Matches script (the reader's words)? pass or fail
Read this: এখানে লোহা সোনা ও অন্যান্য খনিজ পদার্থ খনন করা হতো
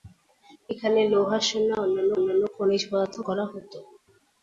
fail